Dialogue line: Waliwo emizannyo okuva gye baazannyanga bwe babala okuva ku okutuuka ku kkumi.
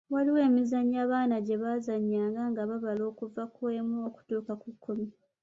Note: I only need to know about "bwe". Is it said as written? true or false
false